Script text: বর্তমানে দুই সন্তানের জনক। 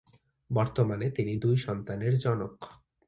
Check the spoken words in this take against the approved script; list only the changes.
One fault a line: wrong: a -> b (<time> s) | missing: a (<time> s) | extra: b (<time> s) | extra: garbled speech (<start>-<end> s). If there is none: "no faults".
extra: তিনি (1.1 s)